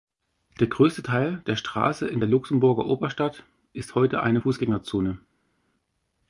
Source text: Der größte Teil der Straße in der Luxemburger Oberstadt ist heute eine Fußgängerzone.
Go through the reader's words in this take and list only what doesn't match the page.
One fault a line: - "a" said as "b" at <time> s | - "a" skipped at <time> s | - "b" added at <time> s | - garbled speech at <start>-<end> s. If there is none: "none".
none